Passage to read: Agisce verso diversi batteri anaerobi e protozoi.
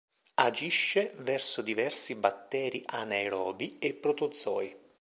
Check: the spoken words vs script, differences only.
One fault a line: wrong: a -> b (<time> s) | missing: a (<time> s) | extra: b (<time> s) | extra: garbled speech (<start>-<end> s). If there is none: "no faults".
no faults